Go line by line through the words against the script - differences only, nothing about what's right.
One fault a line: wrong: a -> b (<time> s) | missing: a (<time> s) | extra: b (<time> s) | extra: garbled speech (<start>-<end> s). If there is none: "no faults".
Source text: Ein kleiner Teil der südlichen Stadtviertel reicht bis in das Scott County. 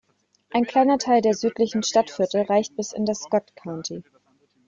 no faults